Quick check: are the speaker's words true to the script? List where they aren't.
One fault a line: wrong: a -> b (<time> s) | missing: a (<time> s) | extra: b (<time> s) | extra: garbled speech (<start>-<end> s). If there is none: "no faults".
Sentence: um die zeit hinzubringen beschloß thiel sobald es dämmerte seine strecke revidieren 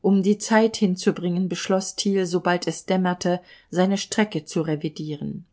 extra: zu (4.4 s)